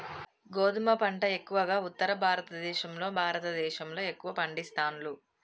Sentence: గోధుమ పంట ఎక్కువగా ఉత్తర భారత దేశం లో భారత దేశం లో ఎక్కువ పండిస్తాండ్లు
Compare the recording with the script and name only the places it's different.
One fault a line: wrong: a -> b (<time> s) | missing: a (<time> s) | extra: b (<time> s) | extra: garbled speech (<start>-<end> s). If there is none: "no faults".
no faults